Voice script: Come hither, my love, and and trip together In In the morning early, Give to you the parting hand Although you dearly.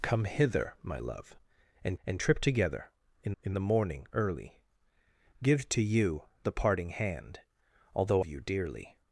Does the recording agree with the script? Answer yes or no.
yes